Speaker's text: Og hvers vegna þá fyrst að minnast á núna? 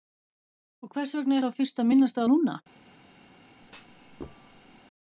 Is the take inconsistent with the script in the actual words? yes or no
no